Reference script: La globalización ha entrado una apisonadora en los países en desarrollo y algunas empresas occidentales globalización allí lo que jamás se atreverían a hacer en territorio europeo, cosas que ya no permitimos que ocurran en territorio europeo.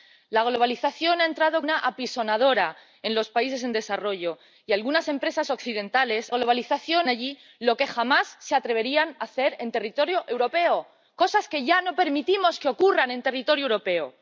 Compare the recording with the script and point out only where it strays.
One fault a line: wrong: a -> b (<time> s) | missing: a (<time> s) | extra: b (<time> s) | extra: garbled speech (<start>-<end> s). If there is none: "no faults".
no faults